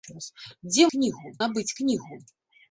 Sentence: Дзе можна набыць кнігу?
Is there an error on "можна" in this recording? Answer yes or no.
yes